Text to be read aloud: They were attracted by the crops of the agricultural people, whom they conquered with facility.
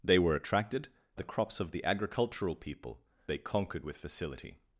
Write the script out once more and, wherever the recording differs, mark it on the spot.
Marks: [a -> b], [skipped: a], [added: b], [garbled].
They were attracted [skipped: by] the crops of the agricultural people, [skipped: whom] they conquered with facility.